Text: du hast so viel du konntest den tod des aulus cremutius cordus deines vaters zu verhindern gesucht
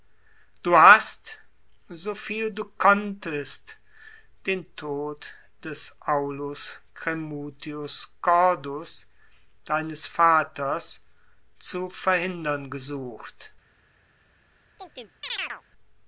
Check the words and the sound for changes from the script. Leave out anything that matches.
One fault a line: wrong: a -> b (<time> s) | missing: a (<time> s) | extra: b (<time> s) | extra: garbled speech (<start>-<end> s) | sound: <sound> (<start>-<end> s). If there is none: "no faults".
sound: chirp (14.8-15.6 s)